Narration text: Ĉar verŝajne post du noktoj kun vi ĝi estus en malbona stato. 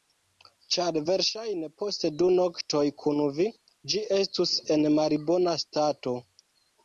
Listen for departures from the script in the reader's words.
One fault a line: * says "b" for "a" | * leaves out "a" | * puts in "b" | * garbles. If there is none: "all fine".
all fine